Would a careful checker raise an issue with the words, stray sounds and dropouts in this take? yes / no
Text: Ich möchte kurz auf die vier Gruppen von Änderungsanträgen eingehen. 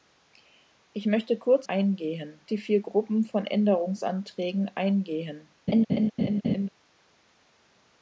yes